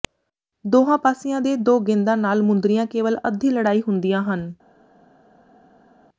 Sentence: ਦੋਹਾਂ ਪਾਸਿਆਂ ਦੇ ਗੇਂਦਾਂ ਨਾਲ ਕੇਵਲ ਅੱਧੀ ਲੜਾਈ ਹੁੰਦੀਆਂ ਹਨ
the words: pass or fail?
fail